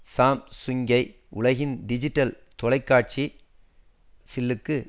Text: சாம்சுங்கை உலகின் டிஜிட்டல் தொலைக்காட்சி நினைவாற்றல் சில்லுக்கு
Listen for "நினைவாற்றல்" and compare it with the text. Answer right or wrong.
wrong